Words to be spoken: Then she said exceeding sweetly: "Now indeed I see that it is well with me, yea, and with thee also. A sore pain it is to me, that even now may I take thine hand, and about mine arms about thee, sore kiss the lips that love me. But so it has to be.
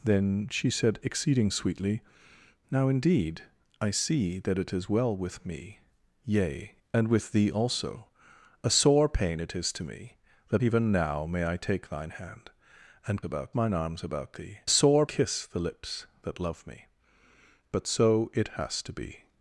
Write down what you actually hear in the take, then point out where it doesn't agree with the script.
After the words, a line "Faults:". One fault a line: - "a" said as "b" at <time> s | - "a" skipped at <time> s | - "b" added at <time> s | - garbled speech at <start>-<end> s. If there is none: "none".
Then she said exceeding sweetly: "Now indeed I see that it is well with me, yea, and with thee also. A sore pain it is to me, that even now may I take thine hand, and about mine arms about thee, sore kiss the lips that love me. But so it has to be.
Faults:
none